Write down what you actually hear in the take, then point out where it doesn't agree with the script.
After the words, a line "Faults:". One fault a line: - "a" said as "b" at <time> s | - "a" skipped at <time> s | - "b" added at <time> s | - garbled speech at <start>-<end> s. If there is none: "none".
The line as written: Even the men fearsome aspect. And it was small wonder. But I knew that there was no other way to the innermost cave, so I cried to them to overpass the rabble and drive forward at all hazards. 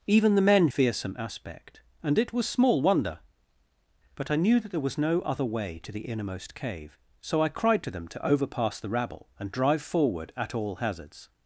Even the men fearsome aspect. And it was small wonder. But I knew that there was no other way to the innermost cave, so I cried to them to overpass the rabble and drive forward at all hazards.
Faults:
none